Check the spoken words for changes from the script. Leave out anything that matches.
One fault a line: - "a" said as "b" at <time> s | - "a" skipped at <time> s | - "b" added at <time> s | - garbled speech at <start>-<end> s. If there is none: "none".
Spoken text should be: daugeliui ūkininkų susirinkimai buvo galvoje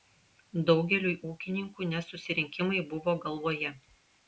- "ne" added at 1.9 s